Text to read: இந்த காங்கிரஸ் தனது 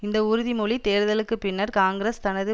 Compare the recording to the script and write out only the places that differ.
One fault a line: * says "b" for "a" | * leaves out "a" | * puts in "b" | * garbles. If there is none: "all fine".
* puts in "உறுதிமொழி தேர்தலுக்கு பின்னர்"